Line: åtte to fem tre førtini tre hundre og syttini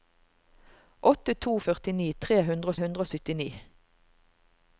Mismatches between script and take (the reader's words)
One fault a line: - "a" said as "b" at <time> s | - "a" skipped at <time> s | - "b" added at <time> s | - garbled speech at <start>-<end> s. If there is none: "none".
- "fem" said as "førtini" at 1.6 s
- "førtini tre" said as "hundre" at 2.5 s